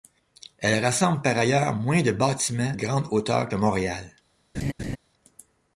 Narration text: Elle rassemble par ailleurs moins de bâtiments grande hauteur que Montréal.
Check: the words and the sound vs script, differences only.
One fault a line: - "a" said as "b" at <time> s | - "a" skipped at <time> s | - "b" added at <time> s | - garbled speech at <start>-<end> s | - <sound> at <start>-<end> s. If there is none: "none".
- laugh at 4.5-5.0 s